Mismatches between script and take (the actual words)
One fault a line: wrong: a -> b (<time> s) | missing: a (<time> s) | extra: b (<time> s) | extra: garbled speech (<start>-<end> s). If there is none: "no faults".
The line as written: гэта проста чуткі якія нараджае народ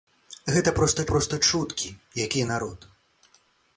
extra: проста (1.1 s)
missing: нараджае (2.5 s)